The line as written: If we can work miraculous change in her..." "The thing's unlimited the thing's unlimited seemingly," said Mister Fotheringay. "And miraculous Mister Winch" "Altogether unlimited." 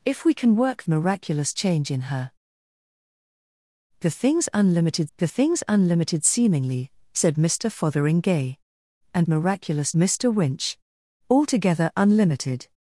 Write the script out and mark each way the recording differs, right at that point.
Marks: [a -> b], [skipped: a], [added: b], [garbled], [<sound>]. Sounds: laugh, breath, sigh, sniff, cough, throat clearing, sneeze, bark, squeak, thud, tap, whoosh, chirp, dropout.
If we can work miraculous change in her..." "The thing's unlimited the thing's unlimited seemingly," said Mister Fotheringay. "And miraculous Mister Winch" "Altogether unlimited."